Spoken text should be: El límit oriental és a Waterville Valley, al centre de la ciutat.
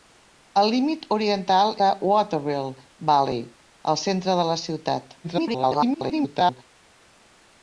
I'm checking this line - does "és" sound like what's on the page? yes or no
no